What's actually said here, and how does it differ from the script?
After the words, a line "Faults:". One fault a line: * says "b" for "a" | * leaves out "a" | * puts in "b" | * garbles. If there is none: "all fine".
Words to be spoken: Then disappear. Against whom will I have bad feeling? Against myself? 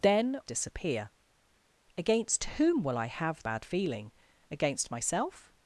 Then disappear. Against whom will I have bad feeling? Against myself?
Faults:
all fine